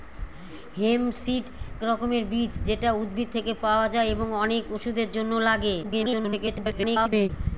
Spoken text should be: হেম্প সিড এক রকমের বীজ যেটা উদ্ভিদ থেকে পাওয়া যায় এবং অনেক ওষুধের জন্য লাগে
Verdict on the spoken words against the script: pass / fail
fail